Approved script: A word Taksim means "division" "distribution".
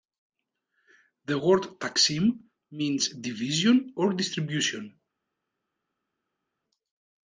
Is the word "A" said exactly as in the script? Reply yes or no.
no